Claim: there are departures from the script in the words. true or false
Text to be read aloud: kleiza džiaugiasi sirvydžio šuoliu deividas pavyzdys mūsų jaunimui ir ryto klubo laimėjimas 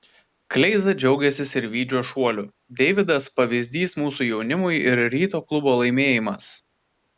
false